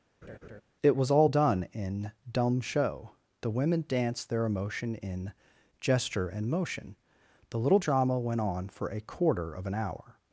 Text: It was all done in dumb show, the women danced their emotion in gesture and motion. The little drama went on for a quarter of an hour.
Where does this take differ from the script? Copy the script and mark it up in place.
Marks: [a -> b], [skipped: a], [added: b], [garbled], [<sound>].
[laugh] It was all done in dumb show, the women danced their emotion in gesture and motion. The little drama went on for a quarter of an hour.